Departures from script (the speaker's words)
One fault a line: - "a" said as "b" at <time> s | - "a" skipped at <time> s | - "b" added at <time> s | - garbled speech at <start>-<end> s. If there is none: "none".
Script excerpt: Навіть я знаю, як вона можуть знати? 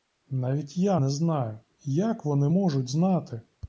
- "не" added at 1.0 s
- "вона" said as "вони" at 2.3 s